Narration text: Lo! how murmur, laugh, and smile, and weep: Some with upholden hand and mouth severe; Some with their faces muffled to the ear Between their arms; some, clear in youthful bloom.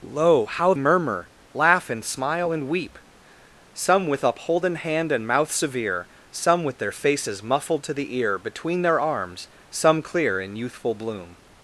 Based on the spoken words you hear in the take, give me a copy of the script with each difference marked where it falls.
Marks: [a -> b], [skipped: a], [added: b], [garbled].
Lo! how murmur, laugh, and smile, and weep: Some with upholden hand and mouth severe; Some with their faces muffled to the ear Between their arms; some, clear in youthful bloom.